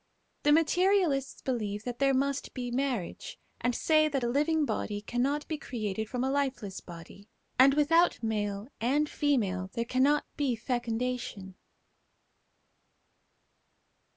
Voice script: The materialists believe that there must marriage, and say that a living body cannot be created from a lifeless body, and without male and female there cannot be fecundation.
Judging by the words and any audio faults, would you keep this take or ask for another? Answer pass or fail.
fail